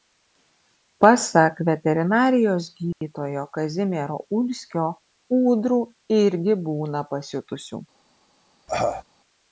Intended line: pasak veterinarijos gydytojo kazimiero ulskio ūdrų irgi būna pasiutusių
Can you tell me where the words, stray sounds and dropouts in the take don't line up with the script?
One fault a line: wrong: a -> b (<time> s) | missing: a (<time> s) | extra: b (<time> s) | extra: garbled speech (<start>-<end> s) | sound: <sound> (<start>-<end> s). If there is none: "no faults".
sound: dropout (2.9-3.0 s)
sound: cough (8.7-9.0 s)